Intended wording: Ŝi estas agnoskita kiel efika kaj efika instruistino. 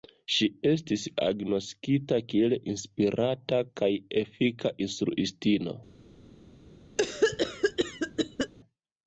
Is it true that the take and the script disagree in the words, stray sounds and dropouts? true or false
true